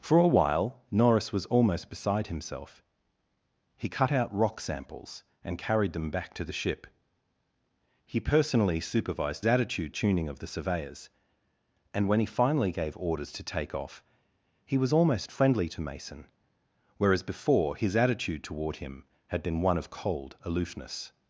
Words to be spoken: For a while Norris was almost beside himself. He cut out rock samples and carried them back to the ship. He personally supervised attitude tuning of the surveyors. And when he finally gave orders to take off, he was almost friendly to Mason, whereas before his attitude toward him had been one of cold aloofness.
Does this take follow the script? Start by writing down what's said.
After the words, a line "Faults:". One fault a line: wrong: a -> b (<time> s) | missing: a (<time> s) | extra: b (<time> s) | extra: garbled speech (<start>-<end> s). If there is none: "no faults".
For a while Norris was almost beside himself. He cut out rock samples and carried them back to the ship. He personally supervised attitude tuning of the surveyors. And when he finally gave orders to take off, he was almost friendly to Mason, whereas before his attitude toward him had been one of cold aloofness.
Faults:
no faults